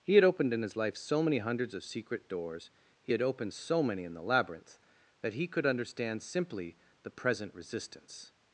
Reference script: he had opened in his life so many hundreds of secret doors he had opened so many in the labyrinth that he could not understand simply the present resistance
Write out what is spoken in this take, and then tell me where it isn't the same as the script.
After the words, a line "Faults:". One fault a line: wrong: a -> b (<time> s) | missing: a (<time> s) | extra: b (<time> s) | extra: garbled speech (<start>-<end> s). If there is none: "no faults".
he had opened in his life so many hundreds of secret doors he had opened so many in the labyrinth that he could understand simply the present resistance
Faults:
missing: not (5.7 s)